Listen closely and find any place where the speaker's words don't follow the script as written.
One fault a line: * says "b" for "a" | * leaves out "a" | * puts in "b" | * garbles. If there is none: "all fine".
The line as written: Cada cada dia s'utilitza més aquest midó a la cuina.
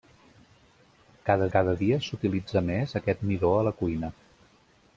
all fine